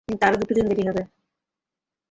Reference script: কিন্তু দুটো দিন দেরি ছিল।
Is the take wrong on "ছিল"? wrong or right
wrong